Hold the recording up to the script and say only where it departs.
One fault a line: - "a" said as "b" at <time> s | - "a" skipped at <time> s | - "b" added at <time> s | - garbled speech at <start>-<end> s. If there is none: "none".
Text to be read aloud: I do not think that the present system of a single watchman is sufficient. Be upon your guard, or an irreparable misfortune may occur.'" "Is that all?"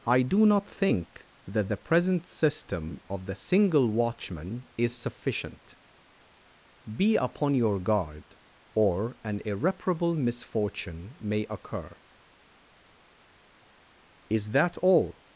- "a" said as "the" at 3.2 s